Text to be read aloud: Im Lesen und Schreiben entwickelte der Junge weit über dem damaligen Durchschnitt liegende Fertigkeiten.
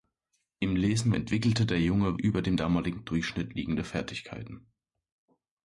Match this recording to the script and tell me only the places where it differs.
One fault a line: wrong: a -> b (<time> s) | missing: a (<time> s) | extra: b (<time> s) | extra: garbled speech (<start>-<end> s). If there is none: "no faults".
missing: und Schreiben (1.1 s)
missing: weit (2.2 s)